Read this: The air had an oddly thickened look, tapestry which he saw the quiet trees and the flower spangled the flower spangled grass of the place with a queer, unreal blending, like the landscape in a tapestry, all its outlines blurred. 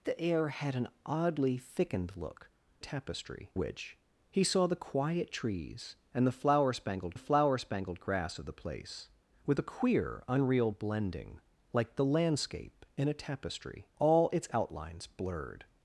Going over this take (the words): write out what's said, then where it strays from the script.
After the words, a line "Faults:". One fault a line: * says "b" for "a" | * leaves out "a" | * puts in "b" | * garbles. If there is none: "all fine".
The air had an oddly thickened look, tapestry which he saw the quiet trees and the flower spangled the flower spangled grass of the place with a queer, unreal blending, like the landscape in a tapestry, all its outlines blurred.
Faults:
all fine